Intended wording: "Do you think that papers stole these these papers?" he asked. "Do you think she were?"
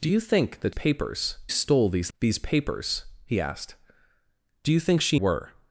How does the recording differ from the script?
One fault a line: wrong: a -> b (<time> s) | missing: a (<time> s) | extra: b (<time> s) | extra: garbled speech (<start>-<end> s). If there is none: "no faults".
no faults